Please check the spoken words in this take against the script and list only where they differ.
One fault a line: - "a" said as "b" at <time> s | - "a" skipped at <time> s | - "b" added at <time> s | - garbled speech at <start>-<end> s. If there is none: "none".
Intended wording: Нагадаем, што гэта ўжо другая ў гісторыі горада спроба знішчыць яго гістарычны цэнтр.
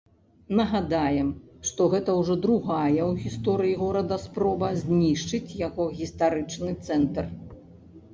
none